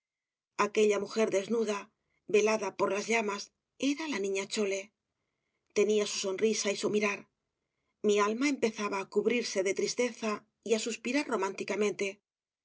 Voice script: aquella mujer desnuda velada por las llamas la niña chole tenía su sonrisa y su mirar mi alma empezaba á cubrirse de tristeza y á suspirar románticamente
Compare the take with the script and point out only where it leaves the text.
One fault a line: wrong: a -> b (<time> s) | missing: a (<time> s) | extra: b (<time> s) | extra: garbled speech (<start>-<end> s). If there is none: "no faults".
extra: era (3.9 s)